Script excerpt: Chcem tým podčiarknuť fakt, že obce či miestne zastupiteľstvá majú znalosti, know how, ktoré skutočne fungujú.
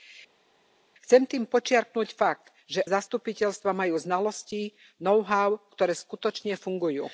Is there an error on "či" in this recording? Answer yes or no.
yes